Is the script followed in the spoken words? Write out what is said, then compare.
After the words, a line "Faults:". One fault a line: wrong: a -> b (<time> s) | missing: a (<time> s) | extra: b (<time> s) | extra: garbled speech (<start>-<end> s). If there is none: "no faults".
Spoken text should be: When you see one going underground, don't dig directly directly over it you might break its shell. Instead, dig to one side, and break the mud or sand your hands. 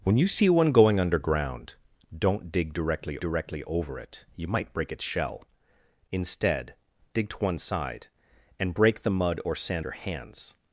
When you see one going underground, don't dig directly directly over it you might break its shell. Instead, dig to one side, and break the mud or sand your hands.
Faults:
no faults